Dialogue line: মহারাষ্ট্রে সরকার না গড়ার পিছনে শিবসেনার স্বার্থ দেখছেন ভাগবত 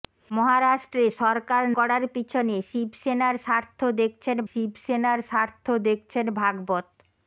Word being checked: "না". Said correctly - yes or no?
no